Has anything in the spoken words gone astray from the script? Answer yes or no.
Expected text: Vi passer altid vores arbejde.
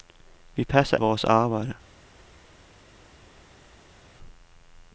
yes